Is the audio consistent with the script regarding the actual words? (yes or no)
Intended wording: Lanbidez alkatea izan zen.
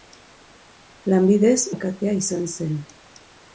yes